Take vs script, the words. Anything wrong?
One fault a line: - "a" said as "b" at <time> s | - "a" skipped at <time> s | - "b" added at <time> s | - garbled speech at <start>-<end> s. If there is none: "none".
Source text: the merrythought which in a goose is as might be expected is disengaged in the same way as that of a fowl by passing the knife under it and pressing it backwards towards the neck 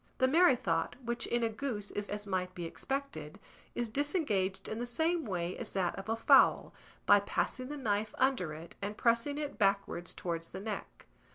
none